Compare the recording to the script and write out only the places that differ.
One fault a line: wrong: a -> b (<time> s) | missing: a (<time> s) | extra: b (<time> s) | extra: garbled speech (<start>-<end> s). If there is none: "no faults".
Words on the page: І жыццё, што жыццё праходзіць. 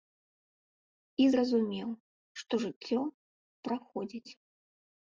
wrong: жыццё -> зразумеў (1.3 s)